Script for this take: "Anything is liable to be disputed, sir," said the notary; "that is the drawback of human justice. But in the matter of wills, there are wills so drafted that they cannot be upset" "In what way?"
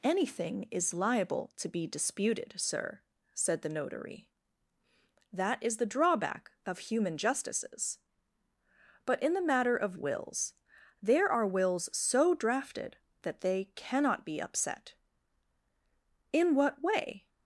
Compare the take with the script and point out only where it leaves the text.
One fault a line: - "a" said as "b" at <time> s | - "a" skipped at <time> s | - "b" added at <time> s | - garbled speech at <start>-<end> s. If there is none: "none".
- "justice" said as "justices" at 7.2 s